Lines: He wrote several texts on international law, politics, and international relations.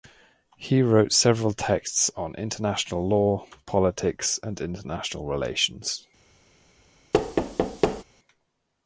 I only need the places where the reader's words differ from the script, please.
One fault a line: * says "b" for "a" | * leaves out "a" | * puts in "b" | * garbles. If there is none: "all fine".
all fine